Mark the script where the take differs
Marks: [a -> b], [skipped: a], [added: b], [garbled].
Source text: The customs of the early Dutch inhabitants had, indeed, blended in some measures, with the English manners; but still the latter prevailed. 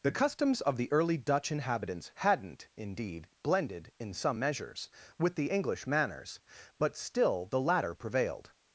The customs of the early Dutch inhabitants [had, -> hadn't] indeed, blended in some measures, with the English manners; but still the latter prevailed.